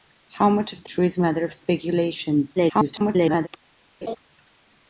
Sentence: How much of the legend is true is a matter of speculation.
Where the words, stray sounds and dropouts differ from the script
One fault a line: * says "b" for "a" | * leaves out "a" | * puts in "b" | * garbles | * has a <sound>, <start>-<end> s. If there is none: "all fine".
* leaves out "legend is"
* garbles
* has a laugh, 4.0-4.2 s